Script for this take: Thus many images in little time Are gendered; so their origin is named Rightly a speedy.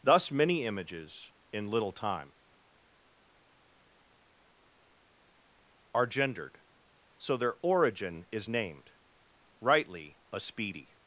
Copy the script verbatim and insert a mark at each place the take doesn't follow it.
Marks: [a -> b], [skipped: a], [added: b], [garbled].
Thus many images in little time Are gendered; so their origin is named Rightly a speedy.